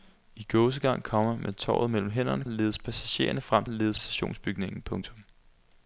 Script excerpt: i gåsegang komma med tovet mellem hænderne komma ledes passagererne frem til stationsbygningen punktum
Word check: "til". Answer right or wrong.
wrong